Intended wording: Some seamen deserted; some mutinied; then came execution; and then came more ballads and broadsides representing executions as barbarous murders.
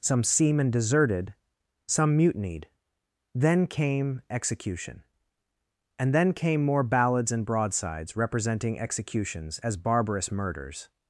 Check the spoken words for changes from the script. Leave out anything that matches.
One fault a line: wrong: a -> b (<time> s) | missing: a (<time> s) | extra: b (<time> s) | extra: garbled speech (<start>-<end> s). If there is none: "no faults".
no faults